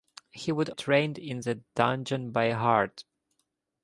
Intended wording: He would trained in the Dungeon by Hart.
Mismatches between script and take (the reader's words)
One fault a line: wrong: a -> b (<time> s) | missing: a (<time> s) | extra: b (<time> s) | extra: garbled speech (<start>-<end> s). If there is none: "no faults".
no faults